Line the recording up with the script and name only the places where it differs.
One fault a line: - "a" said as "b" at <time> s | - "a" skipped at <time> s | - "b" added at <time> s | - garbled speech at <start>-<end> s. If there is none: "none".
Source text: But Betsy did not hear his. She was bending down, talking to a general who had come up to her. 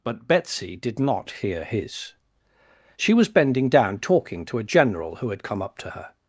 none